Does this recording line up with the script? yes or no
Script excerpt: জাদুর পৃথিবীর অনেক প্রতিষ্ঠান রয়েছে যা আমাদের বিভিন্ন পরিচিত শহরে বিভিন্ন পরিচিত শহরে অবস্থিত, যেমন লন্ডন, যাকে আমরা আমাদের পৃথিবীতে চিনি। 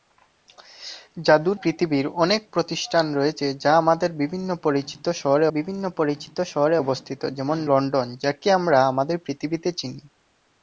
yes